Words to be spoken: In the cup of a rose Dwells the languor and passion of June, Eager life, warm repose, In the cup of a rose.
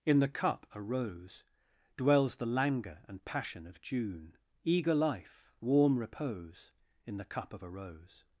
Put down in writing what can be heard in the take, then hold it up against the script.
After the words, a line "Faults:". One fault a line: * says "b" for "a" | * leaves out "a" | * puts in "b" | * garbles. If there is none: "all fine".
In the cup a rose Dwells the languor and passion of June, Eager life, warm repose, In the cup of a rose.
Faults:
* leaves out "of"